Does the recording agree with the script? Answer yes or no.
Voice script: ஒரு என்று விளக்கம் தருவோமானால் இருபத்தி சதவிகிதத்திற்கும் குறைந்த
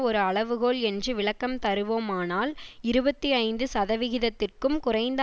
no